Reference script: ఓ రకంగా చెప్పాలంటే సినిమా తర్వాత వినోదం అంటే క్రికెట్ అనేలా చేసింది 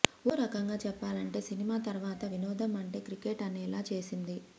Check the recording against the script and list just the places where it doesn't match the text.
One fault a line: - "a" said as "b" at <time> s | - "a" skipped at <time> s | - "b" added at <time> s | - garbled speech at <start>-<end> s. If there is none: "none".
none